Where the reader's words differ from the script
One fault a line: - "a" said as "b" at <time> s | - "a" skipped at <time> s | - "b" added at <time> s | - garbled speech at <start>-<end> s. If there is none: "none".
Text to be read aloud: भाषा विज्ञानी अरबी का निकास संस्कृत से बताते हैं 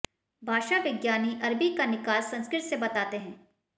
none